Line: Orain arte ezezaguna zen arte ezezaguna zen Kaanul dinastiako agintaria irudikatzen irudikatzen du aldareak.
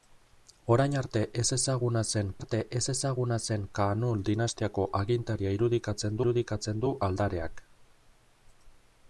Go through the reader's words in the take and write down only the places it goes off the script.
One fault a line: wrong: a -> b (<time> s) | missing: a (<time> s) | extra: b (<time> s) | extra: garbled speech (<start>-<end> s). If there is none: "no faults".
no faults